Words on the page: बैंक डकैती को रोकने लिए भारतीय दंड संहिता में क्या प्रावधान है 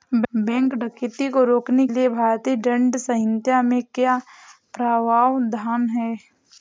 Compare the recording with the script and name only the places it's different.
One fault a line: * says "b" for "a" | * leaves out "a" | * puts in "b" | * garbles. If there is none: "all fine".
all fine